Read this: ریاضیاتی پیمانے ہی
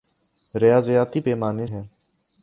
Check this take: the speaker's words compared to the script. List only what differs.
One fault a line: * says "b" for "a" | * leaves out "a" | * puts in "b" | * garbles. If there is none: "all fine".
all fine